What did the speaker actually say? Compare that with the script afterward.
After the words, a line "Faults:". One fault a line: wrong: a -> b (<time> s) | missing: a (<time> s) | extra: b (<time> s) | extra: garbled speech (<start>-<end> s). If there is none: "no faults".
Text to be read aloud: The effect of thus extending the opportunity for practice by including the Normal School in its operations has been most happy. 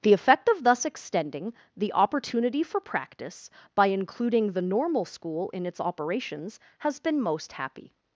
The effect of thus extending the opportunity for practice by including the Normal School in its operations has been most happy.
Faults:
no faults